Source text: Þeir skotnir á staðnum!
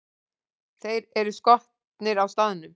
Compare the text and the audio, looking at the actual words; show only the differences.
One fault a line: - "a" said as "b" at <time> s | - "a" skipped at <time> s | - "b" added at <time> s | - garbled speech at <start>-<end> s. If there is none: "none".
- "eru" added at 1.2 s